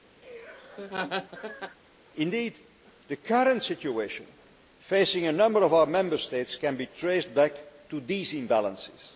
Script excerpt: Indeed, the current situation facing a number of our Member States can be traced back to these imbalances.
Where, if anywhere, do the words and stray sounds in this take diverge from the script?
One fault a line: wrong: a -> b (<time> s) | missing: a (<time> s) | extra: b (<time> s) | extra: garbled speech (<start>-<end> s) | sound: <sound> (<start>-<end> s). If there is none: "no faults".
sound: laugh (0.2-1.8 s)